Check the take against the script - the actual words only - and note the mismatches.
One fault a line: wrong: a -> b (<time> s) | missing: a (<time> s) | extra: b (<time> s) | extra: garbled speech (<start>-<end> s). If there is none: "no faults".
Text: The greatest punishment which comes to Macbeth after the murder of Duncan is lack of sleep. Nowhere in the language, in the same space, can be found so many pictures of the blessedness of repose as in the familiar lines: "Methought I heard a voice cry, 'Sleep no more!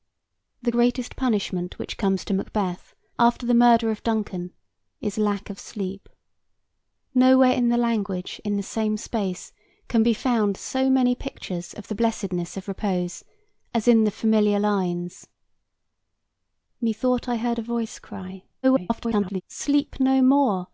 extra: garbled speech (18.6-19.4 s)